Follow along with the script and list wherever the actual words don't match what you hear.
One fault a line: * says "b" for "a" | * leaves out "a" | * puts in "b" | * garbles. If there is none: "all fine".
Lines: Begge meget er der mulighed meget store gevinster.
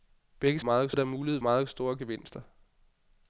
all fine